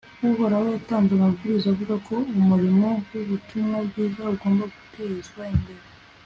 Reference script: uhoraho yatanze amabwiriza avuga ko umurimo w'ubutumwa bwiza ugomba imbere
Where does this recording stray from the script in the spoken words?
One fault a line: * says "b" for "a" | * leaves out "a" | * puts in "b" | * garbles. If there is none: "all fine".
* puts in "gutezwa"